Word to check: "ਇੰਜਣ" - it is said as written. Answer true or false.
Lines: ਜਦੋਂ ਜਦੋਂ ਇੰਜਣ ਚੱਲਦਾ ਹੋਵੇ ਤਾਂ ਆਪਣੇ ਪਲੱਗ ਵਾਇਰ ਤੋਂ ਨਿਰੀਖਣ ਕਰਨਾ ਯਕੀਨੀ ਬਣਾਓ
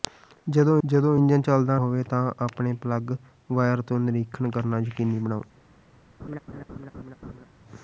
true